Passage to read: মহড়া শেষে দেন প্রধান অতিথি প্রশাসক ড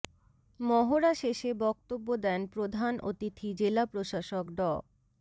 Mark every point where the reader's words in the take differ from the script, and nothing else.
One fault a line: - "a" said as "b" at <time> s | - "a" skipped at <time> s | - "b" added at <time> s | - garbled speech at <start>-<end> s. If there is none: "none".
- "বক্তব্য" added at 1.6 s
- "জেলা" added at 3.6 s